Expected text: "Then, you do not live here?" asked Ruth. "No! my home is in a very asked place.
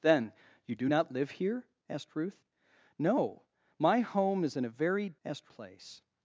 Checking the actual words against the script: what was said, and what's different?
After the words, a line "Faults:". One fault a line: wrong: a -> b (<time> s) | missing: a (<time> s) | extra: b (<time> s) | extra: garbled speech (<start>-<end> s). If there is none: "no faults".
"Then, you do not live here?" asked Ruth. "No! my home is in a very asked place.
Faults:
no faults